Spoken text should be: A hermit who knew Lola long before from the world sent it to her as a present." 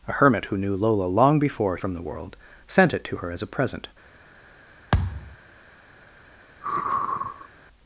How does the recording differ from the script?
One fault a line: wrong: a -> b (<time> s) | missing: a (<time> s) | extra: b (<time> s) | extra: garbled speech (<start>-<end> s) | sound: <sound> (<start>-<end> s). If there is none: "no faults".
sound: thud (4.9-5.4 s)
sound: sigh (6.6-7.5 s)